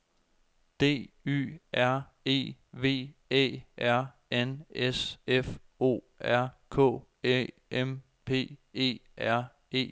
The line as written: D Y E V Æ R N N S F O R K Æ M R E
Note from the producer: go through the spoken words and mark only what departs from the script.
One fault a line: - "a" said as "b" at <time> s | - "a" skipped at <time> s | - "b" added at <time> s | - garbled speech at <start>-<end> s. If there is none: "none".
- "R" added at 1.7 s
- "N" skipped at 4.7 s
- "P E" added at 8.2 s